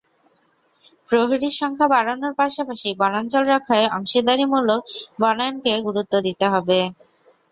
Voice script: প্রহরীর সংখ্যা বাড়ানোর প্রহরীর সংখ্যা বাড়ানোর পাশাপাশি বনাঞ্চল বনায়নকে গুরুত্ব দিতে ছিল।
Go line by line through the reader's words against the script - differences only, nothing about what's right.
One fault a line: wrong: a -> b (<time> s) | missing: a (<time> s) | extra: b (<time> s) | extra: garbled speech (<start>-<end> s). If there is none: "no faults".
wrong: প্রহরীর সংখ্যা বাড়ানোর পাশাপাশি বনাঞ্চল -> পাশাপাশি বনাঞ্চল রক্ষায় অংশীদারিমূলক (2.4 s)
wrong: ছিল -> হবে (6.5 s)